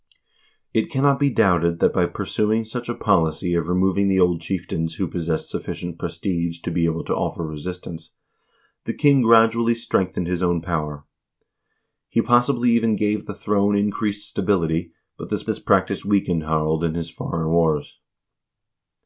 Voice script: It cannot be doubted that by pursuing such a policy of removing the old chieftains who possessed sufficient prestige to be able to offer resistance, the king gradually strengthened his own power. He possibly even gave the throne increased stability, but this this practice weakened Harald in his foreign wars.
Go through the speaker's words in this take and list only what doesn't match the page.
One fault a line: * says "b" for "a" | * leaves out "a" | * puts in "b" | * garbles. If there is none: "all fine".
all fine